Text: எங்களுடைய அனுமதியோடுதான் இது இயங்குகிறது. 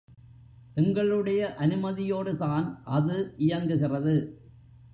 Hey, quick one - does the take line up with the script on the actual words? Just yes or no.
no